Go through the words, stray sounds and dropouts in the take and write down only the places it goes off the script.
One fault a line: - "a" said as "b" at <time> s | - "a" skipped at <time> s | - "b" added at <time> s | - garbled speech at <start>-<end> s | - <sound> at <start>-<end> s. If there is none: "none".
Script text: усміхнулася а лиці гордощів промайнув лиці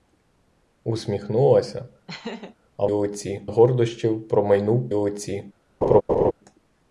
- laugh at 2.1-2.6 s
- laugh at 5.8-6.3 s